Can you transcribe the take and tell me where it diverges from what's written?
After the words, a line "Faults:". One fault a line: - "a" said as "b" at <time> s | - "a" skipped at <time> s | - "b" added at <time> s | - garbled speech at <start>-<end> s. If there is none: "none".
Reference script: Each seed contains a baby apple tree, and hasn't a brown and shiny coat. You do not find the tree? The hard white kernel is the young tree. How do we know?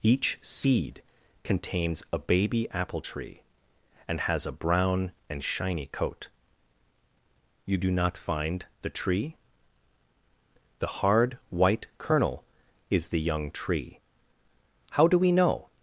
Each seed contains a baby apple tree, and has a brown and shiny coat. You do not find the tree? The hard white kernel is the young tree. How do we know?
Faults:
- "hasn't" said as "has" at 4.2 s